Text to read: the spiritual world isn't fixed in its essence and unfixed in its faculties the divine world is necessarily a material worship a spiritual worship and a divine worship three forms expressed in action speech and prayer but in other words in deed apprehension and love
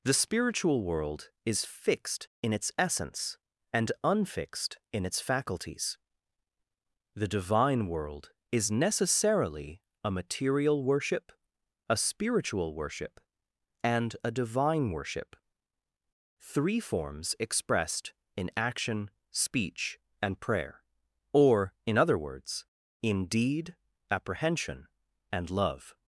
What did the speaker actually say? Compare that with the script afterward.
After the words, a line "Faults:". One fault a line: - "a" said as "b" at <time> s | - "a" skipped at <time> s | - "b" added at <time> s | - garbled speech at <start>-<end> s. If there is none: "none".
the spiritual world is fixed in its essence and unfixed in its faculties the divine world is necessarily a material worship a spiritual worship and a divine worship three forms expressed in action speech and prayer or in other words in deed apprehension and love
Faults:
- "isn't" said as "is" at 1.4 s
- "but" said as "or" at 21.3 s